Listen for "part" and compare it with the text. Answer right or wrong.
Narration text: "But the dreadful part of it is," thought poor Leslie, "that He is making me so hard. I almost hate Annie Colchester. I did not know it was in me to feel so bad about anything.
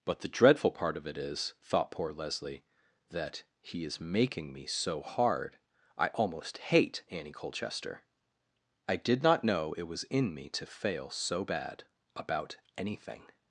right